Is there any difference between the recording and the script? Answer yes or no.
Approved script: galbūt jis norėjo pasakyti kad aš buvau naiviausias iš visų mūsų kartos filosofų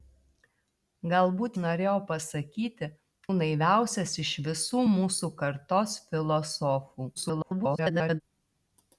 yes